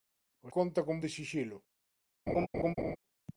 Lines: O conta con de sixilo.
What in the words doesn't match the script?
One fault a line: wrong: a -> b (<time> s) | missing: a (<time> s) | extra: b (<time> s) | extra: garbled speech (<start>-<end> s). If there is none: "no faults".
no faults